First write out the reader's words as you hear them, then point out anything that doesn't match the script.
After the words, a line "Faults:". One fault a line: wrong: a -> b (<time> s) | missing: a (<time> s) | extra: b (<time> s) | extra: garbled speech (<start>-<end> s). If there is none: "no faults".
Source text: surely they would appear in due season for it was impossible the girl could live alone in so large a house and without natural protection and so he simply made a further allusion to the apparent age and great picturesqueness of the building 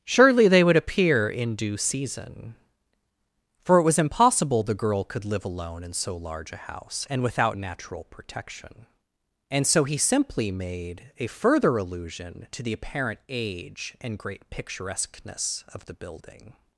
surely they would appear in due season for it was impossible the girl could live alone in so large a house and without natural protection and so he simply made a further allusion to the apparent age and great picturesqueness of the building
Faults:
no faults